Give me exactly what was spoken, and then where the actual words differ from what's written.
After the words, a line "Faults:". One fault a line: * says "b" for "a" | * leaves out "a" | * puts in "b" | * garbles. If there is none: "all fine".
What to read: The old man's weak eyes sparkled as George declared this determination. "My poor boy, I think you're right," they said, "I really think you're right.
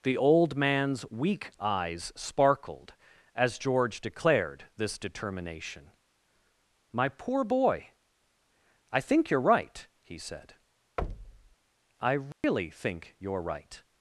The old man's weak eyes sparkled as George declared this determination. "My poor boy, I think you're right," he said, "I really think you're right.
Faults:
* says "he" for "they"